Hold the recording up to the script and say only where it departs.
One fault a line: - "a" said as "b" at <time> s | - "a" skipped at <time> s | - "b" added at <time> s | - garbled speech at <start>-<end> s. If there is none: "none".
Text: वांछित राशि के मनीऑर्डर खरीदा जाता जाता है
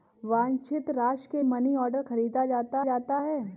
none